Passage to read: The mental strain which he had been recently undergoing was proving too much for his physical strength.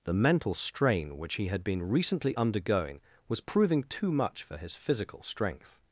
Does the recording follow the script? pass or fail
pass